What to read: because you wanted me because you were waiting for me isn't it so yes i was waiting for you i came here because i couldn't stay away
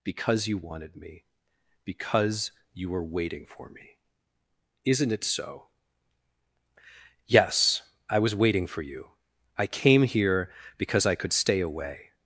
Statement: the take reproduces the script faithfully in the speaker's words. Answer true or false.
false